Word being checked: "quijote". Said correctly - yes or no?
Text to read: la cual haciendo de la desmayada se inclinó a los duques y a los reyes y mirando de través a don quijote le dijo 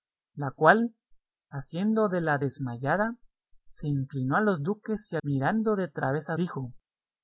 no